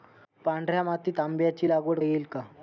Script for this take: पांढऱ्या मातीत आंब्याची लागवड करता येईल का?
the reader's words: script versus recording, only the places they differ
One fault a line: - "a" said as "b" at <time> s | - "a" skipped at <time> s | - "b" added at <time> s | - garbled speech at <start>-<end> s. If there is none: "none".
- "करता" skipped at 2.0 s